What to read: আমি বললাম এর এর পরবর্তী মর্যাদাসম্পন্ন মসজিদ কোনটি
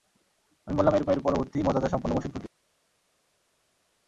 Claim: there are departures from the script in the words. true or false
false